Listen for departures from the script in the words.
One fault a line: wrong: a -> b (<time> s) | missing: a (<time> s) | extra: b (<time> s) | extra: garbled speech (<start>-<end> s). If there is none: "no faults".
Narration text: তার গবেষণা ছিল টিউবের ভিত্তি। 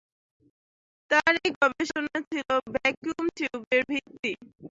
extra: এই (1.4 s)
extra: ভ্যাকুয়াম (2.7 s)